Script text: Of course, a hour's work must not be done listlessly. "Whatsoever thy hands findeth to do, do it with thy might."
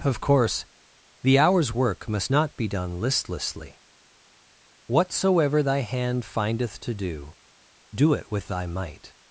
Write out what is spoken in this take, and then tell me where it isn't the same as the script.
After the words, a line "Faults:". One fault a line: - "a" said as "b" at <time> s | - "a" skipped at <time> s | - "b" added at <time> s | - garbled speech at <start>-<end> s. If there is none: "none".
Of course, the hour's work must not be done listlessly. "Whatsoever thy hand findeth to do, do it with thy might."
Faults:
- "a" said as "the" at 1.2 s
- "hands" said as "hand" at 5.8 s